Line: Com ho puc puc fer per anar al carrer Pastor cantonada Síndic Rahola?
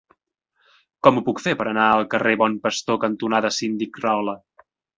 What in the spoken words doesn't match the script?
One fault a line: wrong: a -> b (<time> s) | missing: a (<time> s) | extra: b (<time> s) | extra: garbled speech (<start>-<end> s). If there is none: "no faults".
missing: puc (1.4 s)
extra: Bon (2.5 s)